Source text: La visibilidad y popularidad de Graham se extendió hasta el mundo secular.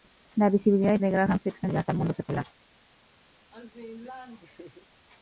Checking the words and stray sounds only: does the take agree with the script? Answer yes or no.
no